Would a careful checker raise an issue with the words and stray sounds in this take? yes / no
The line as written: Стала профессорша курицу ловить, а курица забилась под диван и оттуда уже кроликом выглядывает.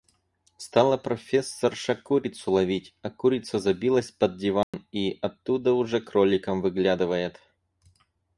yes